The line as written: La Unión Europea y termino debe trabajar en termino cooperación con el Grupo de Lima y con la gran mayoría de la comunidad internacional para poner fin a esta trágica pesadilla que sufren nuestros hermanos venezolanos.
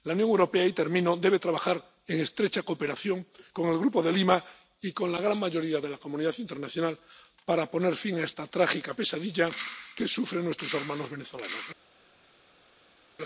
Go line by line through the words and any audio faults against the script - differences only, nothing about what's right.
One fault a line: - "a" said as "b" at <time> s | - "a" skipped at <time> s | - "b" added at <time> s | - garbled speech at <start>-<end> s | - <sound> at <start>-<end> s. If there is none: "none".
- "termino" said as "estrecha" at 2.2 s